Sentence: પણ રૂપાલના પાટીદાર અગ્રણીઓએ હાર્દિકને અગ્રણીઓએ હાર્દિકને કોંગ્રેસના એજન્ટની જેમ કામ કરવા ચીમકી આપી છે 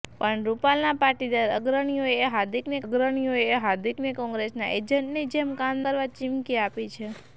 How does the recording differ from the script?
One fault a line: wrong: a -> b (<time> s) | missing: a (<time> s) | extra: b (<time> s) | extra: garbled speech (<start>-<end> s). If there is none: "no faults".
no faults